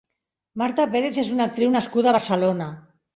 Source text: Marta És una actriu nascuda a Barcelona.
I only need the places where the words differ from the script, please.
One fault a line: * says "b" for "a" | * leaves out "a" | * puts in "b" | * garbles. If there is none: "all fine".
* puts in "Pérez"